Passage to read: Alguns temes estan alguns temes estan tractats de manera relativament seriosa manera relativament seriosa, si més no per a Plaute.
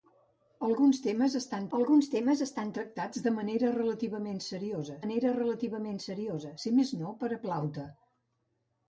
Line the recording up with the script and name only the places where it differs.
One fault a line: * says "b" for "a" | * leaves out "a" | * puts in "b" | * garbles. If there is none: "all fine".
all fine